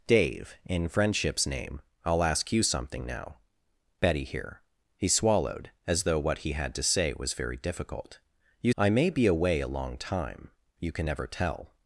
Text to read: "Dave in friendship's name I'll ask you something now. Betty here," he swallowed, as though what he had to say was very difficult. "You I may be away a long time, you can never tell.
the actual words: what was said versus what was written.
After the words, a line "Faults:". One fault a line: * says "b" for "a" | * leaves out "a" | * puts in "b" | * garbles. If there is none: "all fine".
"Dave in friendship's name I'll ask you something now. Betty here," he swallowed, as though what he had to say was very difficult. "You I may be away a long time, you can never tell.
Faults:
all fine